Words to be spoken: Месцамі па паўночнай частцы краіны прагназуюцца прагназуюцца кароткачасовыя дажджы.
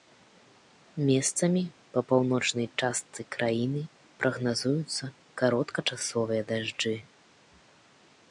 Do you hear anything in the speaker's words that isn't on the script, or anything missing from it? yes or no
yes